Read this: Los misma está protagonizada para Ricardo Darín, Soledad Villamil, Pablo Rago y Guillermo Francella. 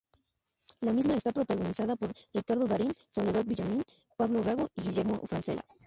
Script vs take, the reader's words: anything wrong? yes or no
yes